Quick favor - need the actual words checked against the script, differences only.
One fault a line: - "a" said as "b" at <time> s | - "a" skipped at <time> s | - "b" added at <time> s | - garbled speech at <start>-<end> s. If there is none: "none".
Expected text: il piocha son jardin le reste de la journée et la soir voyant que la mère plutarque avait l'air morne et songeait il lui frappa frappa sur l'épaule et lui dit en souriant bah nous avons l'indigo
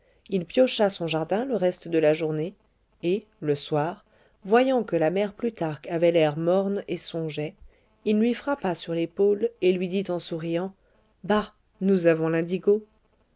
- "la" said as "le" at 3.4 s
- "frappa" skipped at 8.7 s